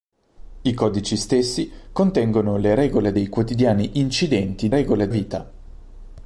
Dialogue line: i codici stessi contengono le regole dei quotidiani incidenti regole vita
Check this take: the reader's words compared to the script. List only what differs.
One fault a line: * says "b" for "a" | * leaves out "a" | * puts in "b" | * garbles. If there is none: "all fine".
all fine